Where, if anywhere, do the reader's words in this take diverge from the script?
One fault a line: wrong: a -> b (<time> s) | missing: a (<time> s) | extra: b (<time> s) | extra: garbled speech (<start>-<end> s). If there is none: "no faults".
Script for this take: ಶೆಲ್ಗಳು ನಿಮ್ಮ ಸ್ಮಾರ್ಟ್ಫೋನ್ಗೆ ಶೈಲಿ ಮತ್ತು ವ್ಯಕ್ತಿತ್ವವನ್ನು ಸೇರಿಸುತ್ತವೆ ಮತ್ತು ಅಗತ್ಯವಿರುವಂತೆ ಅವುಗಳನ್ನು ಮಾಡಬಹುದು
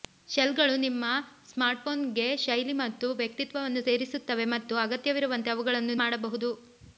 no faults